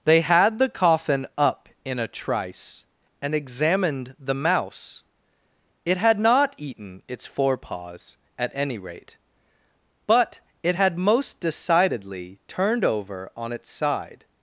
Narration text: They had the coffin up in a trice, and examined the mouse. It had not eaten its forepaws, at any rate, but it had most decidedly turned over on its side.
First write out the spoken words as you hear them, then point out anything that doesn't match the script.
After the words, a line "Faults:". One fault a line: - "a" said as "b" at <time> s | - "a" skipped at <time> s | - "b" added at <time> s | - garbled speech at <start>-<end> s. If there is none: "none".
They had the coffin up in a trice, and examined the mouse. It had not eaten its forepaws, at any rate, but it had most decidedly turned over on its side.
Faults:
none